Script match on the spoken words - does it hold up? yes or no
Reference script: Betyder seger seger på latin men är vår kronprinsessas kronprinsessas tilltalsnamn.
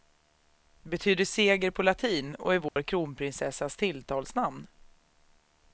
no